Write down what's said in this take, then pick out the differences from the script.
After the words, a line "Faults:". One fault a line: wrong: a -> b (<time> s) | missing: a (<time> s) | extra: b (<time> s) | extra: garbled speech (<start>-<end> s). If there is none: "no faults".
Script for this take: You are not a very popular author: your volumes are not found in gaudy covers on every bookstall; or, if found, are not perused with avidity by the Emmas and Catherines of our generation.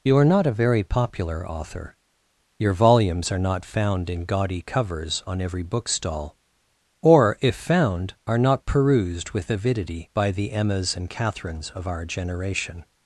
You are not a very popular author: your volumes are not found in gaudy covers on every bookstall; or, if found, are not perused with avidity by the Emmas and Catherines of our generation.
Faults:
no faults